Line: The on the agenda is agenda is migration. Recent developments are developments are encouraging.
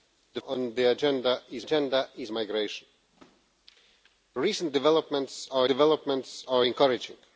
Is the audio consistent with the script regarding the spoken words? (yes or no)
yes